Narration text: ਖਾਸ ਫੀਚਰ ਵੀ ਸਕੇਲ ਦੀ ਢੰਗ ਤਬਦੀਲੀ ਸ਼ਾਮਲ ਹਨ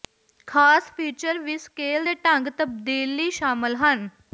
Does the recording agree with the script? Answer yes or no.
no